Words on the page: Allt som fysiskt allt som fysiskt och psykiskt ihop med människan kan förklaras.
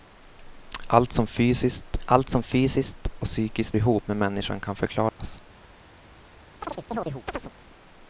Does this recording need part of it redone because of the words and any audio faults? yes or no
yes